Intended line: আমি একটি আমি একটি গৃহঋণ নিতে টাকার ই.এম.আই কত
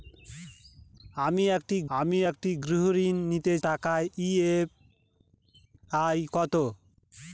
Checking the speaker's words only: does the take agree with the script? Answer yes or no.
yes